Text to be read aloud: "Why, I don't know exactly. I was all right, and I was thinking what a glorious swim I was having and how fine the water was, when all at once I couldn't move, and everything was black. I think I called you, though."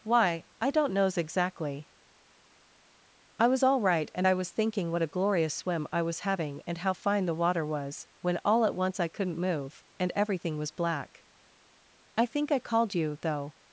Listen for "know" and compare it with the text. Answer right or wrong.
wrong